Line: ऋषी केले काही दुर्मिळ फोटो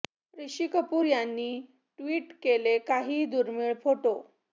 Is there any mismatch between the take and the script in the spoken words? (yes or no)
yes